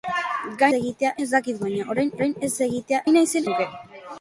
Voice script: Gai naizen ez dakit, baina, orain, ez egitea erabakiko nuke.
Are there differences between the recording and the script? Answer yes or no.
yes